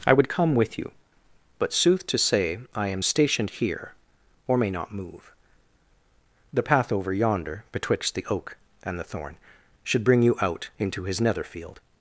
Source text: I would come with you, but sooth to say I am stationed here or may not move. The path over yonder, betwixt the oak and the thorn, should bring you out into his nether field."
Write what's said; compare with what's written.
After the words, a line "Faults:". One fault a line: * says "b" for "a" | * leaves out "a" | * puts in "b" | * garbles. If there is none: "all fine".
I would come with you, but sooth to say I am stationed here or may not move. The path over yonder, betwixt the oak and the thorn, should bring you out into his nether field."
Faults:
all fine